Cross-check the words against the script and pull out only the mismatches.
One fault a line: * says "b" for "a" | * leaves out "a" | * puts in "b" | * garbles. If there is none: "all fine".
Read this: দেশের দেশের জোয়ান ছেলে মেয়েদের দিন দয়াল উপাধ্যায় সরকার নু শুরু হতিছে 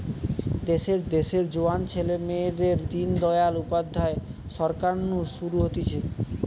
all fine